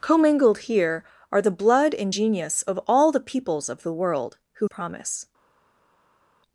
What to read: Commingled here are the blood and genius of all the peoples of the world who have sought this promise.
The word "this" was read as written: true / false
false